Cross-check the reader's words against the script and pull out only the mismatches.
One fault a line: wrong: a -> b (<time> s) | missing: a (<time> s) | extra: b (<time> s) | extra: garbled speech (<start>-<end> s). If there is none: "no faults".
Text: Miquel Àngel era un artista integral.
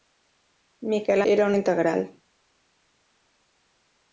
missing: Àngel (1.2 s)
missing: artista (1.6 s)